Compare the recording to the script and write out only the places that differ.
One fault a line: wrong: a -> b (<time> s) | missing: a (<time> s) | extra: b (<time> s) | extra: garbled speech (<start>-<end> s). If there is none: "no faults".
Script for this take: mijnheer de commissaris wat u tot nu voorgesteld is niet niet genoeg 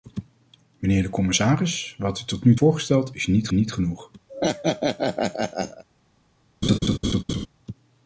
no faults